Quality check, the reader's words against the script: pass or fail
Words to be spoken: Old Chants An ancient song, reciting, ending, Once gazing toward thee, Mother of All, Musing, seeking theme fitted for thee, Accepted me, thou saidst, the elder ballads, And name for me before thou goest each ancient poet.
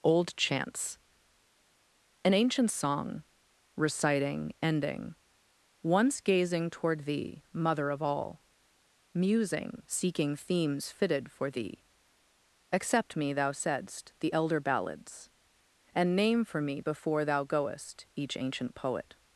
fail